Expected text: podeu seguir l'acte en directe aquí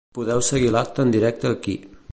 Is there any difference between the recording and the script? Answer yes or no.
no